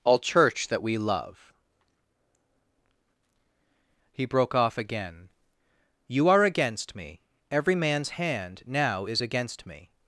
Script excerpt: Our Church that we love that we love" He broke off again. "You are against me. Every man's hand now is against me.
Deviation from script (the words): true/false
true